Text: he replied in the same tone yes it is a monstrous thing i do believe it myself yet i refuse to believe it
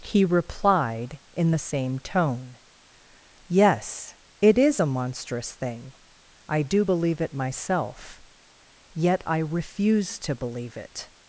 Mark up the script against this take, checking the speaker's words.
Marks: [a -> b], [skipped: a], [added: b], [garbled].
he replied in the same tone yes it is a monstrous thing i do believe it myself yet i refuse to believe it